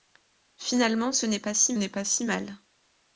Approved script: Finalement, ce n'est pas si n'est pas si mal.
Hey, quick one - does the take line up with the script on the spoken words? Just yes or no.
yes